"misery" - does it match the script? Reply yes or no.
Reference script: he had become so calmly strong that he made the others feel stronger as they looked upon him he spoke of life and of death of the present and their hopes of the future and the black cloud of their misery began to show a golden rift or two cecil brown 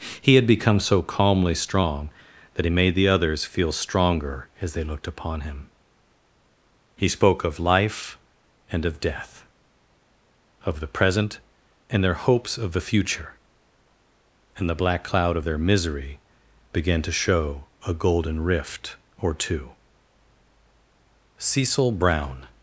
yes